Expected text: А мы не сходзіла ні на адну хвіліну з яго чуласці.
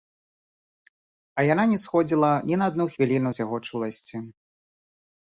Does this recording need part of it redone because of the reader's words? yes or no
yes